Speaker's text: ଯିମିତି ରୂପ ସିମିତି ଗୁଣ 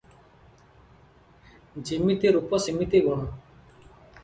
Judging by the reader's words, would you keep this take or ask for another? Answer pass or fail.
pass